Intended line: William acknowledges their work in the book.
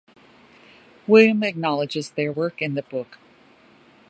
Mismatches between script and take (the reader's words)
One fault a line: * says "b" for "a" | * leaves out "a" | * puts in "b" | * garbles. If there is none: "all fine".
all fine